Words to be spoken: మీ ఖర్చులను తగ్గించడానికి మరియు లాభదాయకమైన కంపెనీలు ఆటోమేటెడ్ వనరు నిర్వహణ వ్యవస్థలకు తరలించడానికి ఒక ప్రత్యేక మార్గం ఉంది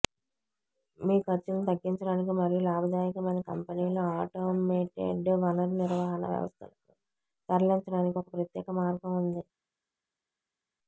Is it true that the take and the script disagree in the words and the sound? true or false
false